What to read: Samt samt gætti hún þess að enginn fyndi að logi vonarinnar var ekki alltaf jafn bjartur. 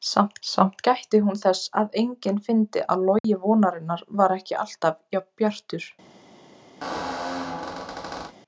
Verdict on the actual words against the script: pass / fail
pass